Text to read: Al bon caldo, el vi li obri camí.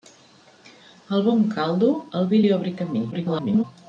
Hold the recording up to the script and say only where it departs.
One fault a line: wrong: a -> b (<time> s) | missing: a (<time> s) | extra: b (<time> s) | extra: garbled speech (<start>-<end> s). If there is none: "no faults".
extra: garbled speech (3.1-3.6 s)